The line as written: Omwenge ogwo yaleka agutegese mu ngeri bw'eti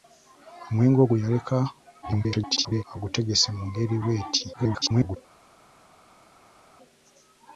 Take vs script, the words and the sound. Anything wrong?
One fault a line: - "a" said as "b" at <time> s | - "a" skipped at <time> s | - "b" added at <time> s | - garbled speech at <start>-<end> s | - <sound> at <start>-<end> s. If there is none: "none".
- garbled speech at 2.0-2.8 s
- garbled speech at 4.5-5.2 s